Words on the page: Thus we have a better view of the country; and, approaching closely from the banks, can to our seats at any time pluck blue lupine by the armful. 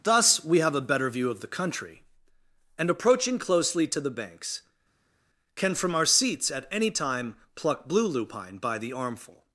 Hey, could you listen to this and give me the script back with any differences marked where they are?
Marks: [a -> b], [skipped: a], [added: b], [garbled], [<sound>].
Thus we have a better view of the country; and, approaching closely [from -> to] the banks, can [to -> from] our seats at any time pluck blue lupine by the armful.